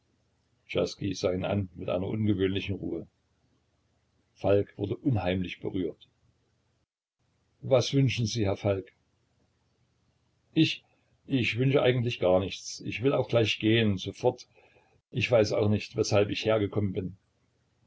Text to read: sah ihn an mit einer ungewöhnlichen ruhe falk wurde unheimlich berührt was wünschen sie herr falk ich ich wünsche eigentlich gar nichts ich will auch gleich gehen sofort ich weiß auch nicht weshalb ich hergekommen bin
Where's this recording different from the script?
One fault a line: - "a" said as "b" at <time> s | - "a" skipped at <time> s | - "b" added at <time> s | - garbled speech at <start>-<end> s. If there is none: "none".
none